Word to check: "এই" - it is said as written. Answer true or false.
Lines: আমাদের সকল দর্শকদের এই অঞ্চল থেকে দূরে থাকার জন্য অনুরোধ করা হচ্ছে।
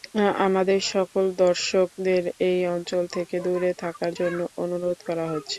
true